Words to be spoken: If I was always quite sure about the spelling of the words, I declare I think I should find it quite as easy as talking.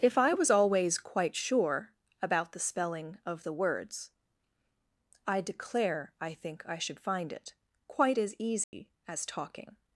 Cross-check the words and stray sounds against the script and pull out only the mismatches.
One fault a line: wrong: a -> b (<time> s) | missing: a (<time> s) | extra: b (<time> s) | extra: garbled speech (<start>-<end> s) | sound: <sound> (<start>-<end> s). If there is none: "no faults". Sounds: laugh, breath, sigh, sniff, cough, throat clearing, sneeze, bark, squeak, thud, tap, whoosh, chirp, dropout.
sound: dropout (8.6-8.7 s)